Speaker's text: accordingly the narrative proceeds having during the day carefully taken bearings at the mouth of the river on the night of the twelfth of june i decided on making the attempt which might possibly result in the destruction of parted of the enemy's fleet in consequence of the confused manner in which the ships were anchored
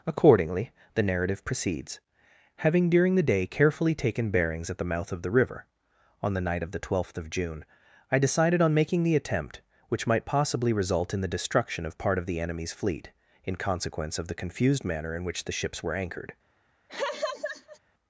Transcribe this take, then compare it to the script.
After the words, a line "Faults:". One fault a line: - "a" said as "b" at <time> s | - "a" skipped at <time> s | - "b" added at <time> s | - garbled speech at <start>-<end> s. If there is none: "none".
accordingly the narrative proceeds having during the day carefully taken bearings at the mouth of the river on the night of the twelfth of june i decided on making the attempt which might possibly result in the destruction of part of the enemy's fleet in consequence of the confused manner in which the ships were anchored
Faults:
- "parted" said as "part" at 12.0 s